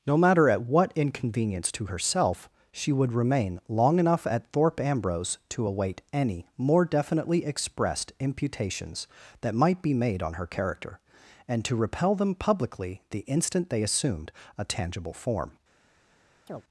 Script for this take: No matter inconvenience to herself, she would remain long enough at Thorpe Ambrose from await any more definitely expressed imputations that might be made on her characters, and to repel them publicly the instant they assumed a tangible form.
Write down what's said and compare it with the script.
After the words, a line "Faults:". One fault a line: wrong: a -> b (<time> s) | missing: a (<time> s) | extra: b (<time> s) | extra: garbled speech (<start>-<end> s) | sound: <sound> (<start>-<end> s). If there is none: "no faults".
No matter at what inconvenience to herself, she would remain long enough at Thorpe Ambrose to await any more definitely expressed imputations that might be made on her character, and to repel them publicly the instant they assumed a tangible form.
Faults:
extra: at what (0.5 s)
wrong: from -> to (5.5 s)
wrong: characters -> character (10.5 s)
sound: chirp (16.5-16.6 s)